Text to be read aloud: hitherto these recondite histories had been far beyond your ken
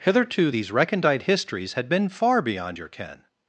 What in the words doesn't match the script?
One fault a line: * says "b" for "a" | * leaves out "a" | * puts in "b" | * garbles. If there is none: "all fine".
all fine